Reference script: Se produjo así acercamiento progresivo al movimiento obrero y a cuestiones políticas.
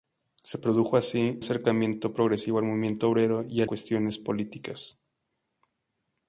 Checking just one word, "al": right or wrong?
right